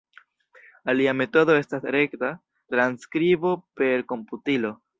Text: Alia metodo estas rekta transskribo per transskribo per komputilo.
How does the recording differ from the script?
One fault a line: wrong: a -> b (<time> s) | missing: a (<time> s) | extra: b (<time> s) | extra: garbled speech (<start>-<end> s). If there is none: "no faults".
missing: transskribo per (4.1 s)